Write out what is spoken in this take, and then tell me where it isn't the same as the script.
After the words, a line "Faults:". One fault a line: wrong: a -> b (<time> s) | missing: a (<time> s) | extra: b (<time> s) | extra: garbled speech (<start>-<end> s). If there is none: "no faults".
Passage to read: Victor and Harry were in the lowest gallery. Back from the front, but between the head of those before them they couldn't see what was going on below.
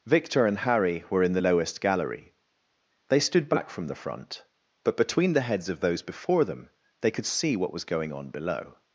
Victor and Harry were in the lowest gallery. They stood back from the front, but between the heads of those before them they could see what was going on below.
Faults:
extra: They stood (3.1 s)
wrong: head -> heads (5.5 s)
wrong: couldn't -> could (7.1 s)